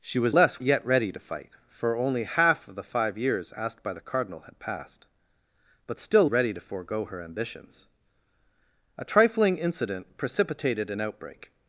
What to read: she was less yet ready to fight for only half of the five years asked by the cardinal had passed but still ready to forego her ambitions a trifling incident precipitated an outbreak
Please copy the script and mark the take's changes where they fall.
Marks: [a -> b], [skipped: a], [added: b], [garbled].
she was less yet ready to fight for only half of the five years asked by the cardinal had passed but still ready to forego her ambitions a trifling incident precipitated an outbreak